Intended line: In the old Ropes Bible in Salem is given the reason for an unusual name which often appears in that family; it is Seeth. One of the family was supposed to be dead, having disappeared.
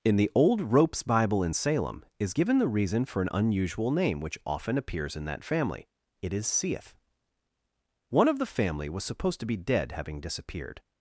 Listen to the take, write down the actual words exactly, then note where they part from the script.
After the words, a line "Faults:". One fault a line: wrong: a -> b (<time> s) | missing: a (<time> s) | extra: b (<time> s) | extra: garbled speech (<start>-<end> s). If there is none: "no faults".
In the old Ropes Bible in Salem is given the reason for an unusual name which often appears in that family; it is Seeth. One of the family was supposed to be dead, having disappeared.
Faults:
no faults